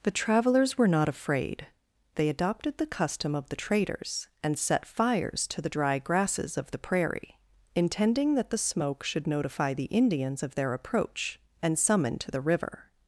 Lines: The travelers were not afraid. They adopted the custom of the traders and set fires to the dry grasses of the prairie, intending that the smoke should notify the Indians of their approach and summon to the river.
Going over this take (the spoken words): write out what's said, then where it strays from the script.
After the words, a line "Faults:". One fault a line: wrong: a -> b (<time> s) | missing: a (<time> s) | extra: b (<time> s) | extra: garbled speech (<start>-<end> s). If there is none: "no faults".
The travelers were not afraid. They adopted the custom of the traders and set fires to the dry grasses of the prairie, intending that the smoke should notify the Indians of their approach and summon to the river.
Faults:
no faults